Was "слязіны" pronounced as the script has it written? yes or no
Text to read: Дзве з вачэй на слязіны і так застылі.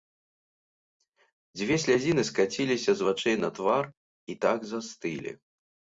no